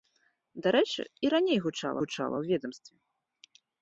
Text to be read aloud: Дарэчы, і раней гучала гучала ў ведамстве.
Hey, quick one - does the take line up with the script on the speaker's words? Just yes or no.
yes